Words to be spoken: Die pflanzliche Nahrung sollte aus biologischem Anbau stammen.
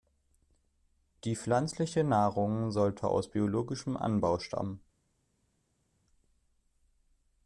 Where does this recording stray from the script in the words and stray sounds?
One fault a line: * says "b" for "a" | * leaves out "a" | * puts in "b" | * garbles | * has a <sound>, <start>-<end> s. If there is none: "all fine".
all fine